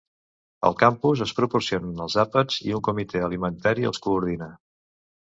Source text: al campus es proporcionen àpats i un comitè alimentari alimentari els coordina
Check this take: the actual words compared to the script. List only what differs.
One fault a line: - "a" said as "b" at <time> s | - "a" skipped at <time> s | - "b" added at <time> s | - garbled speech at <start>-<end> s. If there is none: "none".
- "els" added at 2.0 s
- "alimentari" skipped at 3.9 s